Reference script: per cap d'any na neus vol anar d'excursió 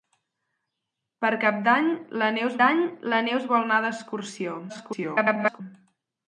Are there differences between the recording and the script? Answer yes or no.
yes